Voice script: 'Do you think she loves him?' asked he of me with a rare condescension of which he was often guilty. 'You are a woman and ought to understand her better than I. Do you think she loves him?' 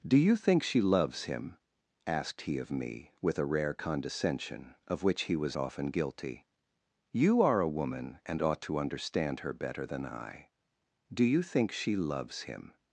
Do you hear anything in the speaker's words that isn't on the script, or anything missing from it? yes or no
no